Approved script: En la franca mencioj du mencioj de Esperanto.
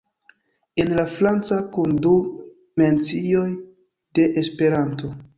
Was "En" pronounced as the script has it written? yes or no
yes